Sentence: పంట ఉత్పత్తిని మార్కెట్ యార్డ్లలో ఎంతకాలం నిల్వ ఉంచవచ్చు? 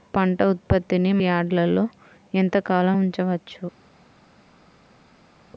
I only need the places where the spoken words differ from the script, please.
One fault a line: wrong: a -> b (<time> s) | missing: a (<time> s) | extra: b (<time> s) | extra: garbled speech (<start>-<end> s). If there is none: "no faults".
missing: మార్కెట్ (1.1 s)
missing: నిల్వ (3.0 s)